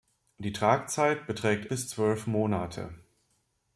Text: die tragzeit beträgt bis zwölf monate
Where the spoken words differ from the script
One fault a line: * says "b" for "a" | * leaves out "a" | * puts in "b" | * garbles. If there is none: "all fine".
all fine